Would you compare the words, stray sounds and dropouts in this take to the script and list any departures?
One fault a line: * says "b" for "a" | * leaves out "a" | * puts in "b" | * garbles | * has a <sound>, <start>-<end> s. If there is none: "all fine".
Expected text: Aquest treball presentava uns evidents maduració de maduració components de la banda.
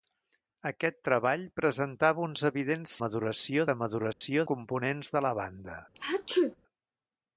* has a dropout, 4.1-4.2 s
* has a sneeze, 5.9-6.6 s